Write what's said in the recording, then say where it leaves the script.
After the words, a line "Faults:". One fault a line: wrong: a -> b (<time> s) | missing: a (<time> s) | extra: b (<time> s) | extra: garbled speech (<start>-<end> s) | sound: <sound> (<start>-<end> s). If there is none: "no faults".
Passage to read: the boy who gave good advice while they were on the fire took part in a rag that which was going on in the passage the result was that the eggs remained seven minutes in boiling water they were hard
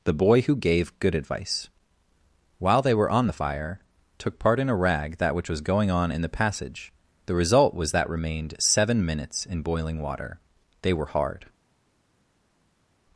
the boy who gave good advice while they were on the fire took part in a rag that which was going on in the passage the result was that remained seven minutes in boiling water they were hard
Faults:
missing: the eggs (8.1 s)